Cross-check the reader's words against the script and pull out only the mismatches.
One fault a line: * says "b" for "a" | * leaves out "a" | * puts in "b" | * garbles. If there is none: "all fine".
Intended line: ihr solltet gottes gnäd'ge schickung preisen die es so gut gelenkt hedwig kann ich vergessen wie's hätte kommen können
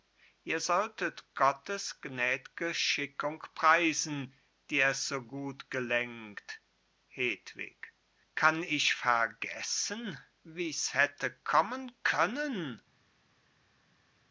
all fine